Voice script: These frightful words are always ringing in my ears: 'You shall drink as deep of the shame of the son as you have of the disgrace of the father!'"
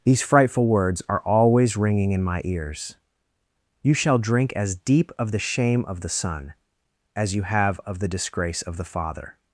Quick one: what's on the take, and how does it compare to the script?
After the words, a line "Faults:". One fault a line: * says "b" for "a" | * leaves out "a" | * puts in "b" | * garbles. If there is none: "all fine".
These frightful words are always ringing in my ears: 'You shall drink as deep of the shame of the son as you have of the disgrace of the father!'"
Faults:
all fine